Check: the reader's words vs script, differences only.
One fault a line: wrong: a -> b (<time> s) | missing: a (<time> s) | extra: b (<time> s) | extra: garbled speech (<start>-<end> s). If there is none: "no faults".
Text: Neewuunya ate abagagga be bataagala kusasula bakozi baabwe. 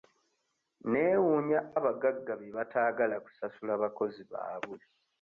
missing: ate (1.6 s)